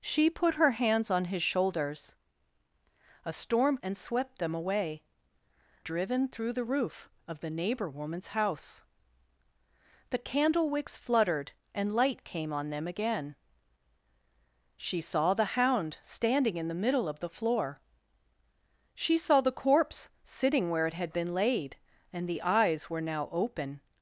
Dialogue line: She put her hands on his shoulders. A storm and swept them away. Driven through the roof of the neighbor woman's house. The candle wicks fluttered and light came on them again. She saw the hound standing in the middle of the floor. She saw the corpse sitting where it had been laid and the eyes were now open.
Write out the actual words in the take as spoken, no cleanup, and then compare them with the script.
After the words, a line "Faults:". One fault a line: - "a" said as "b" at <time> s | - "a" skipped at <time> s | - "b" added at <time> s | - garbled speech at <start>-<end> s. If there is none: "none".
She put her hands on his shoulders. A storm and swept them away. Driven through the roof of the neighbor woman's house. The candle wicks fluttered and light came on them again. She saw the hound standing in the middle of the floor. She saw the corpse sitting where it had been laid and the eyes were now open.
Faults:
none